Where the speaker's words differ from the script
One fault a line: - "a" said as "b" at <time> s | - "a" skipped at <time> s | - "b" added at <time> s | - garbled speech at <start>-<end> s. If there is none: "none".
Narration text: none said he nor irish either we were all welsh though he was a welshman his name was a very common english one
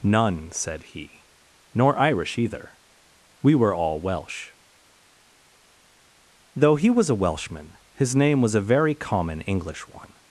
none